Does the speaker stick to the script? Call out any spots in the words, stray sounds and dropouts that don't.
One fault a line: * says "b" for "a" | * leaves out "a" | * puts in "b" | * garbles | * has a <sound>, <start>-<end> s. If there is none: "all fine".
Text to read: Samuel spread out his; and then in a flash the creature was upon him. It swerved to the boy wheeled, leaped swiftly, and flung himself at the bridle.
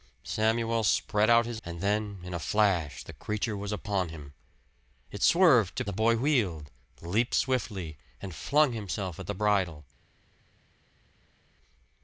all fine